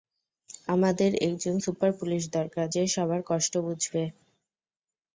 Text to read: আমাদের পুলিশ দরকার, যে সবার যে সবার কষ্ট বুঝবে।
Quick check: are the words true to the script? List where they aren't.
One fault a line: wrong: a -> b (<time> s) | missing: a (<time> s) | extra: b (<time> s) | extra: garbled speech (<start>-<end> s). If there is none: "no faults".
extra: একজন সুপার (1.3 s)
missing: যে সবার (3.2 s)